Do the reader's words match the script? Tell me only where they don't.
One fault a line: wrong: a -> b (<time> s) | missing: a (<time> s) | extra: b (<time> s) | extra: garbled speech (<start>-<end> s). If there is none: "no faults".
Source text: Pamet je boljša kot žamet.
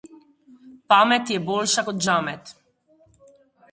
no faults